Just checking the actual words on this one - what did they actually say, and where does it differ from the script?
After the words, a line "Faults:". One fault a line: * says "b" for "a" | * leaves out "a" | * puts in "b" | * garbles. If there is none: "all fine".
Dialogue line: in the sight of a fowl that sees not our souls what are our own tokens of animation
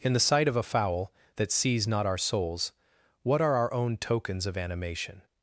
in the sight of a fowl that sees not our souls what are our own tokens of animation
Faults:
all fine